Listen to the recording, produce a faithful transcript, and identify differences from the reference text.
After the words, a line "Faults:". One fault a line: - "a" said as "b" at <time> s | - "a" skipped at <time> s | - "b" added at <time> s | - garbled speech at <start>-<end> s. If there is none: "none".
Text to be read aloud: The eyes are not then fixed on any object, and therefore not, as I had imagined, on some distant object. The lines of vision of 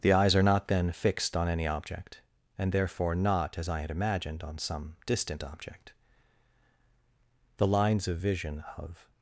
The eyes are not then fixed on any object, and therefore not, as I had imagined, on some distant object. The lines of vision of
Faults:
none